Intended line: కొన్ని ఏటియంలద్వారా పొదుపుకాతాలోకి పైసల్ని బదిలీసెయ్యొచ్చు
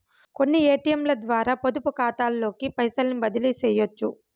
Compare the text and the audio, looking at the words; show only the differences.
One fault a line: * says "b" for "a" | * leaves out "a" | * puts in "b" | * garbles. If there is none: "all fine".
all fine